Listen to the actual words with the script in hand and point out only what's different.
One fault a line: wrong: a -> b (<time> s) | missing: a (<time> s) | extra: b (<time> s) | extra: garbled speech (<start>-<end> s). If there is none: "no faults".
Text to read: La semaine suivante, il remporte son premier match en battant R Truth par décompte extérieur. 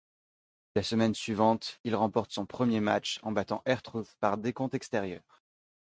no faults